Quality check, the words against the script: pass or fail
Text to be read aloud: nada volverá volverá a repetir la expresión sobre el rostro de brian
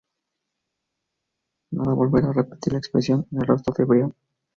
fail